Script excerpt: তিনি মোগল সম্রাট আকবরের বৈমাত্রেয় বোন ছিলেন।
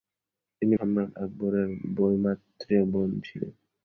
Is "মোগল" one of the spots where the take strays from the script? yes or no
yes